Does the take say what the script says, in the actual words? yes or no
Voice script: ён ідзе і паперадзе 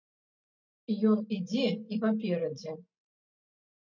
yes